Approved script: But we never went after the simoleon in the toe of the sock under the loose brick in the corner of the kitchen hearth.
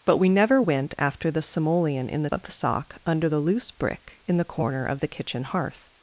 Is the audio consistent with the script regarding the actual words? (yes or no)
no